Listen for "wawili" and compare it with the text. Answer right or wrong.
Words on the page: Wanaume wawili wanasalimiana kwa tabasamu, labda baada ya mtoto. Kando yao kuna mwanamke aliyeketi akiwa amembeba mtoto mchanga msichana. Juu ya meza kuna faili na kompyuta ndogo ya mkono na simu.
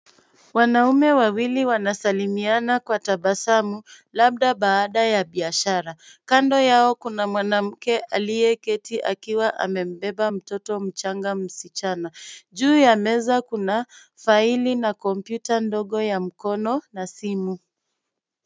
right